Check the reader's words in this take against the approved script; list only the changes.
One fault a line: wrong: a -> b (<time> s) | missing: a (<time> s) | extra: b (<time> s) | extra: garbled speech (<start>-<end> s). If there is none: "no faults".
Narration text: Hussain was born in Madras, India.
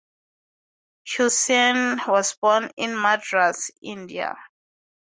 no faults